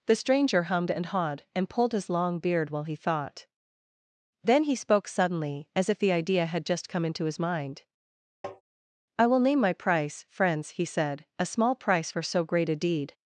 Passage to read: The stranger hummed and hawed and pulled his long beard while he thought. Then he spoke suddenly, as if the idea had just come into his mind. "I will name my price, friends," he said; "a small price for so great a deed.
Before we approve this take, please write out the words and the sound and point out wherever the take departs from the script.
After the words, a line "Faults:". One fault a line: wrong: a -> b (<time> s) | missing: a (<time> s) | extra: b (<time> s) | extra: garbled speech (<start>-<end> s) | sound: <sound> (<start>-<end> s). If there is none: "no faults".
The stranger hummed and hawed and pulled his long beard while he thought. Then he spoke suddenly, as if the idea had just come into his mind. "I will name my price, friends," he said; "a small price for so great a deed.
Faults:
sound: tap (8.4-8.6 s)